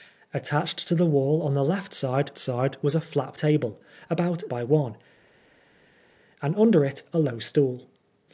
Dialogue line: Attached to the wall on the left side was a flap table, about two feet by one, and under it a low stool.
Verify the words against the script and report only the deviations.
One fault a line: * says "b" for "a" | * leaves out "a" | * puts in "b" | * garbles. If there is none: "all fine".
* puts in "side"
* leaves out "two feet"